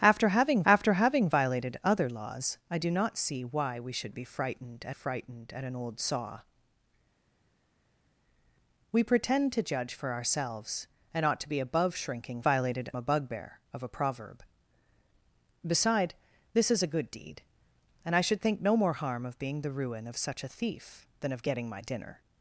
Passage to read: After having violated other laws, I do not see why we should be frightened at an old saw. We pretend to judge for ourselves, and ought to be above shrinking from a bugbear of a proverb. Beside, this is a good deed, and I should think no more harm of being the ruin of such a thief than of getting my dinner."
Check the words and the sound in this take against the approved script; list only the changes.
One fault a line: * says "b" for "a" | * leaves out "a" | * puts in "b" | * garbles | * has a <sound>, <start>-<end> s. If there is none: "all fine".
* puts in "after having"
* puts in "frightened at"
* says "violated" for "from"